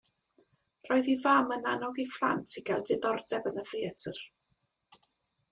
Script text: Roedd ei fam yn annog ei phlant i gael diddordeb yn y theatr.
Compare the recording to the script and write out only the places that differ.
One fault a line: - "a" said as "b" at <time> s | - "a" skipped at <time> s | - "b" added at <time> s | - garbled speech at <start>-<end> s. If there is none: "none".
none